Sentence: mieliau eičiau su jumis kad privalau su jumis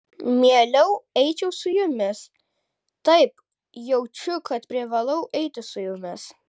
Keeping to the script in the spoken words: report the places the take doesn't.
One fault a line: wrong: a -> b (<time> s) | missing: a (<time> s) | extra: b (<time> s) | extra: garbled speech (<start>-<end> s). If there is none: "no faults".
extra: taip jaučiu (3.1 s)
extra: eiti (5.4 s)